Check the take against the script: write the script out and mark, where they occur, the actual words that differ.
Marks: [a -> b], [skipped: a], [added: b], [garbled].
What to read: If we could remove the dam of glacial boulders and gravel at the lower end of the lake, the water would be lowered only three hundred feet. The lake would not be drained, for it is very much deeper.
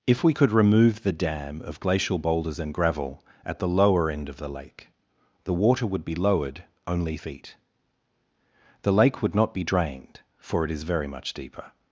If we could remove the dam of glacial boulders and gravel at the lower end of the lake, the water would be lowered only [skipped: three hundred] feet. The lake would not be drained, for it is very much deeper.